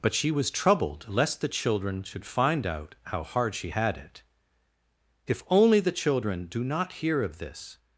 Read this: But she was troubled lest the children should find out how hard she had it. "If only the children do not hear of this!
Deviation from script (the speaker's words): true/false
false